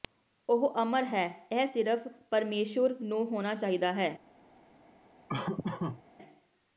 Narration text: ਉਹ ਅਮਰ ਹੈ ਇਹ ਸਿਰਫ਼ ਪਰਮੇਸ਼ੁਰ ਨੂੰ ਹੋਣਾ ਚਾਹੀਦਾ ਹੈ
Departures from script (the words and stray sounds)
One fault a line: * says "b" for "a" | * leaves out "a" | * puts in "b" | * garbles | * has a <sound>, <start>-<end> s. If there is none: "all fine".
* has a laugh, 5.3-6.0 s